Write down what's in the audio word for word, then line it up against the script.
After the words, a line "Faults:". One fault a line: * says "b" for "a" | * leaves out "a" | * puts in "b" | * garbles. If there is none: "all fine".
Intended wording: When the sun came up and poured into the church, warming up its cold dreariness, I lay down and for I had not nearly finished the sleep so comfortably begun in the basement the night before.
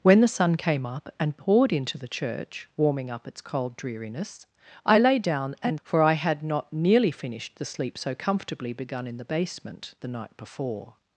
When the sun came up and poured into the church, warming up its cold dreariness, I lay down and for I had not nearly finished the sleep so comfortably begun in the basement the night before.
Faults:
all fine